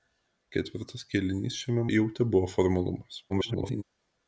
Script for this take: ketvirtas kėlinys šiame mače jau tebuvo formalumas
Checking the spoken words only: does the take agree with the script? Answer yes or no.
no